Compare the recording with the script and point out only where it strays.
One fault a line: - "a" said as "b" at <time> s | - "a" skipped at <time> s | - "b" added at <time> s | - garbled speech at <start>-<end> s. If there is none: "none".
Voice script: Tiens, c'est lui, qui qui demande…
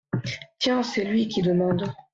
- "qui" skipped at 1.4 s